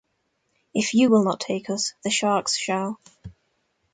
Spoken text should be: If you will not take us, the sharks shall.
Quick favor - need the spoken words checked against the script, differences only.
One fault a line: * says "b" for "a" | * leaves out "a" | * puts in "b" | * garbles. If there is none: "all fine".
all fine